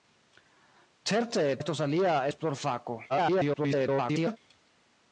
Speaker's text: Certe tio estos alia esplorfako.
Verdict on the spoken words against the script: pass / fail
fail